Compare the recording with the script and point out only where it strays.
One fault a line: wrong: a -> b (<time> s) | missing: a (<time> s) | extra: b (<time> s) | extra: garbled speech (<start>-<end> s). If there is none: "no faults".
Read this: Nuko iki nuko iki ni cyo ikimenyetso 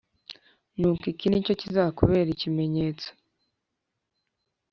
missing: nuko iki (1.2 s)
extra: kizakubera (1.6 s)